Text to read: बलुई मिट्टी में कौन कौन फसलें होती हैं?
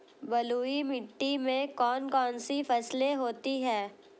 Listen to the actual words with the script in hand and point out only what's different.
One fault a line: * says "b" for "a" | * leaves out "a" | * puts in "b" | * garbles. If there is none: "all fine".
* puts in "सी"